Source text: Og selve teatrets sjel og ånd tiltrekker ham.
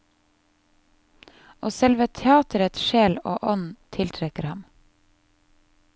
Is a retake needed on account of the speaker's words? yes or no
no